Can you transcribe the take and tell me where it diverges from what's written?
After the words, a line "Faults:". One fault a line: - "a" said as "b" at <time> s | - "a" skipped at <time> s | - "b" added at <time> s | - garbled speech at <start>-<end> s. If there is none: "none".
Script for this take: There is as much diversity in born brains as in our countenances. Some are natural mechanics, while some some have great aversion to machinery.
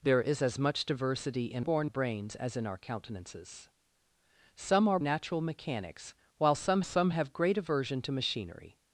There is as much diversity in born brains as in our countenances. Some are natural mechanics, while some some have great aversion to machinery.
Faults:
none